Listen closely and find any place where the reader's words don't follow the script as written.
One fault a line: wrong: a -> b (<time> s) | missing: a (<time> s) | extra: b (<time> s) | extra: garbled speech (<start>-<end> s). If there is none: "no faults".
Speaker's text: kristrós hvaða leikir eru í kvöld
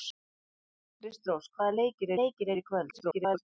extra: leikir (2.2 s)
extra: garbled speech (2.9-3.4 s)